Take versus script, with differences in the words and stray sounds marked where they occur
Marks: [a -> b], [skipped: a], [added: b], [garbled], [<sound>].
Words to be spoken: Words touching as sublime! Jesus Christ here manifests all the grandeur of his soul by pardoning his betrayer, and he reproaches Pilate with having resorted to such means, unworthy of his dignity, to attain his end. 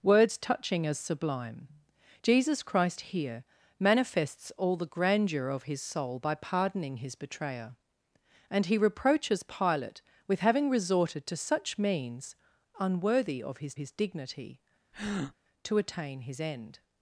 Words touching as sublime! Jesus Christ here manifests all the grandeur of his soul by pardoning his betrayer, and he reproaches Pilate with having resorted to such means, unworthy of his [added: his] dignity, [breath] to attain his end.